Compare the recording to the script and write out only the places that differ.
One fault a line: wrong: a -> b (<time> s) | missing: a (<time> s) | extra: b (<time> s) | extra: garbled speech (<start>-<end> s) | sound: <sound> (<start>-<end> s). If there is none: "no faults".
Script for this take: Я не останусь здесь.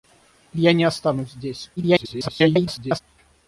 extra: garbled speech (1.8-3.0 s)